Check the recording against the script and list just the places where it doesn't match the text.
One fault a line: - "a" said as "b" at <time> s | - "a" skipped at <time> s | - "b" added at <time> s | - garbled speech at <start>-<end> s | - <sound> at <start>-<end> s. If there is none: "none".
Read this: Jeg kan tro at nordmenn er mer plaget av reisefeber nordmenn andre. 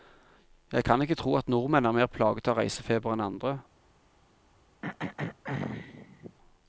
- "ikke" added at 1.0 s
- "nordmenn" said as "enn" at 3.1 s
- throat clearing at 4.8-6.4 s